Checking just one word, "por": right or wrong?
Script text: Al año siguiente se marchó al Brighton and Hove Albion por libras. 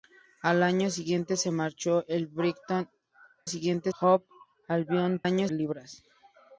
wrong